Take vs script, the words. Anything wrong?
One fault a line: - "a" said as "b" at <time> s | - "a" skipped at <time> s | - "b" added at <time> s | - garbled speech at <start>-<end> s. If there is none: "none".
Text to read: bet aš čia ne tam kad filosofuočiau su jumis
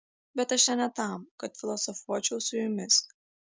none